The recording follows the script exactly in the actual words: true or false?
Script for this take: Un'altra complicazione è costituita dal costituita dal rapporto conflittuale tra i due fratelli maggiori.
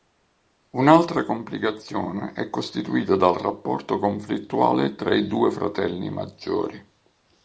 false